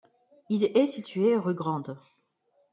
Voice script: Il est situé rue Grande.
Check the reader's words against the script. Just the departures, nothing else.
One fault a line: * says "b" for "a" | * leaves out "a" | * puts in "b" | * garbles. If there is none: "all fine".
all fine